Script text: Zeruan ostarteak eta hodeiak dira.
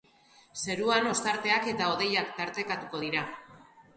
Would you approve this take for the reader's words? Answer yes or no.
no